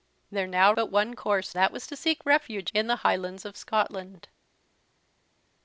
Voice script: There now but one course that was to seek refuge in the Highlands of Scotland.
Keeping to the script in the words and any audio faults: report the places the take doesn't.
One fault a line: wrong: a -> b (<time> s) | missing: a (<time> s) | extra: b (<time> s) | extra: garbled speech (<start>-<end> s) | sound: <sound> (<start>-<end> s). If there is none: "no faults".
no faults